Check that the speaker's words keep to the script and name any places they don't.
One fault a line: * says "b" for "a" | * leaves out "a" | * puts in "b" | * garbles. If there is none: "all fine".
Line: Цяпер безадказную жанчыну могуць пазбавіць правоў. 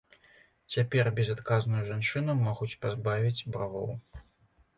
all fine